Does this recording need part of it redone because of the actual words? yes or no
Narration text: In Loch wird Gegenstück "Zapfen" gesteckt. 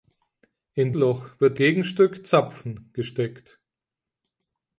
no